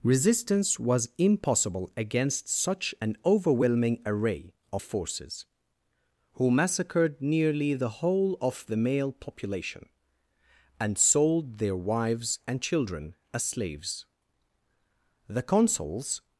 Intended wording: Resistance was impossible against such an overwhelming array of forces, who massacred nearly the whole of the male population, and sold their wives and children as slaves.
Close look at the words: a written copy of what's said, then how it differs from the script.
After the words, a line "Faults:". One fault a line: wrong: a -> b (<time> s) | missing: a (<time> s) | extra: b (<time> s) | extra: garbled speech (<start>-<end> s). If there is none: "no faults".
Resistance was impossible against such an overwhelming array of forces, who massacred nearly the whole of the male population, and sold their wives and children as slaves. The consuls
Faults:
extra: The consuls (15.3 s)